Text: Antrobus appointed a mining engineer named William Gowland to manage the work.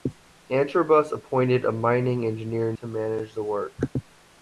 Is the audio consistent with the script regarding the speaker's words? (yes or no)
no